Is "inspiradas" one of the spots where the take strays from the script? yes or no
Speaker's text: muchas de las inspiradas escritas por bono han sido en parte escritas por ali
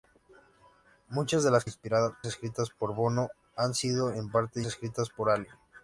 no